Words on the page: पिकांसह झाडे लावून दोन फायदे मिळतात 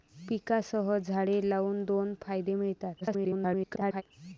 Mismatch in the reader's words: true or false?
true